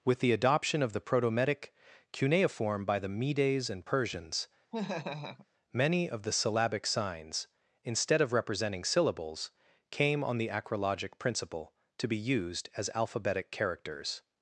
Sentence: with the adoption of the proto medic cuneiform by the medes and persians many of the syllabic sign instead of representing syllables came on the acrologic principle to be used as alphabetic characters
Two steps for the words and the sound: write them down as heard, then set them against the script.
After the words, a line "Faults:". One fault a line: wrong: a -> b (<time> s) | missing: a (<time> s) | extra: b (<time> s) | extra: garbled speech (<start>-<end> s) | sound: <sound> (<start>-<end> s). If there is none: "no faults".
with the adoption of the proto medic cuneiform by the medes and persians many of the syllabic signs instead of representing syllables came on the acrologic principle to be used as alphabetic characters
Faults:
sound: laugh (4.7-5.5 s)
wrong: sign -> signs (6.9 s)